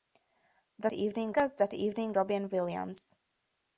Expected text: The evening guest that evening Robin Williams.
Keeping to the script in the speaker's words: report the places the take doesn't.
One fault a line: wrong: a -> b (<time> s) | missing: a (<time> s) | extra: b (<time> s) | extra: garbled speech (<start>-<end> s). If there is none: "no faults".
no faults